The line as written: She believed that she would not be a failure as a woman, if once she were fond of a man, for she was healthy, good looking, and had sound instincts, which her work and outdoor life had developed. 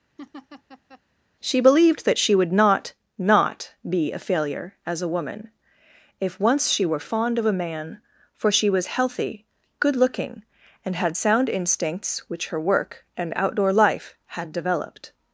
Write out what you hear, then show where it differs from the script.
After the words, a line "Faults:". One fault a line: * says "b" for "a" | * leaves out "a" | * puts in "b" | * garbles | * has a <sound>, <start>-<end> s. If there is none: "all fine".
She believed that she would not not be a failure as a woman, if once she were fond of a man, for she was healthy, good looking, and had sound instincts, which her work and outdoor life had developed.
Faults:
* has a laugh, 0.2-1.0 s
* puts in "not"